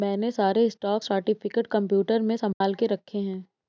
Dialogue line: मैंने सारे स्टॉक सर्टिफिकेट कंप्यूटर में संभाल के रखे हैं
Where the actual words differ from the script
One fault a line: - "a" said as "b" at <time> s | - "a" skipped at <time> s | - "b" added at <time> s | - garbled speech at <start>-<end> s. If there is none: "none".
none